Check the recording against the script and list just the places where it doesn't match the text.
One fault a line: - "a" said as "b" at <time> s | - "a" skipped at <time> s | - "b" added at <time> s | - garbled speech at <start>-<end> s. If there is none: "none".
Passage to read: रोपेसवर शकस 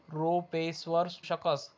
none